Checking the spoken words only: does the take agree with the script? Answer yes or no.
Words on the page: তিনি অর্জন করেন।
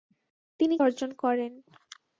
yes